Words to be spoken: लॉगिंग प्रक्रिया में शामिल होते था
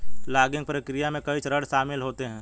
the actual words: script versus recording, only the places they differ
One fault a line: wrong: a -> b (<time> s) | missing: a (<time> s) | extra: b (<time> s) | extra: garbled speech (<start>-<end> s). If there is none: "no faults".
extra: कई चरण (1.3 s)
wrong: था -> है (2.2 s)